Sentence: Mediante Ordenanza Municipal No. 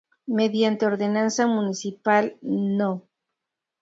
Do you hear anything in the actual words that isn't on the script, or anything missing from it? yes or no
no